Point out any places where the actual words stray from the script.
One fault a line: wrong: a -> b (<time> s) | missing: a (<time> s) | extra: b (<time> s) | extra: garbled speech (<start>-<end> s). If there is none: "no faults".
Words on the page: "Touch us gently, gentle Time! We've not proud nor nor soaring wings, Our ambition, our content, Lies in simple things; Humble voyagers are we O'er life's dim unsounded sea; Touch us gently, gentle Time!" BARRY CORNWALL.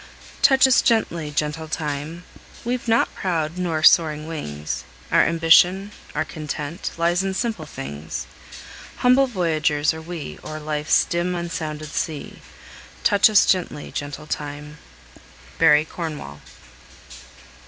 missing: nor (3.8 s)